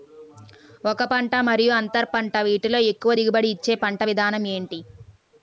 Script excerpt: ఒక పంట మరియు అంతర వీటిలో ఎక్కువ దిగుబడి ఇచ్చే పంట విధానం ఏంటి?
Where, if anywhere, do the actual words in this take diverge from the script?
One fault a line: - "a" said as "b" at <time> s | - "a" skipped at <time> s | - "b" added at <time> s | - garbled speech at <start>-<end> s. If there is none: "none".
- "పంట" added at 2.1 s